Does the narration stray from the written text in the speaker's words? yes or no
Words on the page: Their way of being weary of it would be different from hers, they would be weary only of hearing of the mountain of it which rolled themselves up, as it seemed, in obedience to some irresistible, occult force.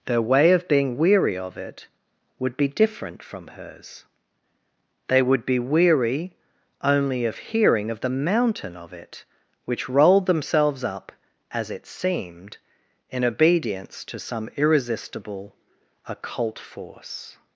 no